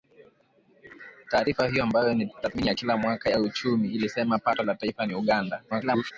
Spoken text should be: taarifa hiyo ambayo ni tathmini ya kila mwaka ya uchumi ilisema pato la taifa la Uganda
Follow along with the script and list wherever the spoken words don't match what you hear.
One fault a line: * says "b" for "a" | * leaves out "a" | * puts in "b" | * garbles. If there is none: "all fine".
* garbles